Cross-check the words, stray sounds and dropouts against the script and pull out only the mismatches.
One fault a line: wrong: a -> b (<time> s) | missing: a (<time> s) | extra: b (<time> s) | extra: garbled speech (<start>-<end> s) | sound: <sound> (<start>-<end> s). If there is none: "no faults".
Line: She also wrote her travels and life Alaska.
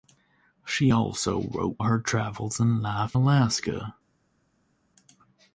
no faults